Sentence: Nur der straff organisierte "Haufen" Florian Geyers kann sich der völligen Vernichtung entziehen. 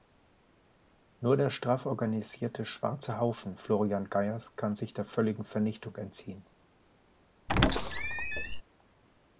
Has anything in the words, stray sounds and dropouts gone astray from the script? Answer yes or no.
yes